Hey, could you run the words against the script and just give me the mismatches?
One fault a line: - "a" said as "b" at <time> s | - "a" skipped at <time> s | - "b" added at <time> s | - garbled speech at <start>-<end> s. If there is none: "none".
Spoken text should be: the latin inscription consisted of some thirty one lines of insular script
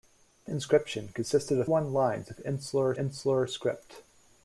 - "latin" skipped at 0.5 s
- "some thirty" skipped at 1.7 s
- "insular" added at 3.0 s